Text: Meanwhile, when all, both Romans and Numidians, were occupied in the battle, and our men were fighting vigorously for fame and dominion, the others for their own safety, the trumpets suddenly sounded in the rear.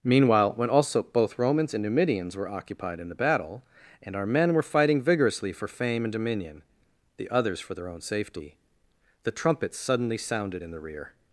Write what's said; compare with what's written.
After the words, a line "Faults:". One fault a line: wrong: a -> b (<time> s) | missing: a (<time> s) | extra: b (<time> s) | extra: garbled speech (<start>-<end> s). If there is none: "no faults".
Meanwhile, when also, both Romans and Numidians, were occupied in the battle, and our men were fighting vigorously for fame and dominion, the others for their own safety, the trumpets suddenly sounded in the rear.
Faults:
wrong: all -> also (0.7 s)